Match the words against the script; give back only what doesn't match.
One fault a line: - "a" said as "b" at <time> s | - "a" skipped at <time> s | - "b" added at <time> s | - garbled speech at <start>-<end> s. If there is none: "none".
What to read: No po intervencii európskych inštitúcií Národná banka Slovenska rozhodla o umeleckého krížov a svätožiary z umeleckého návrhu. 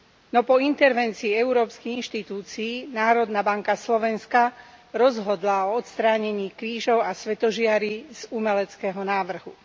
- "umeleckého" said as "odstránení" at 5.8 s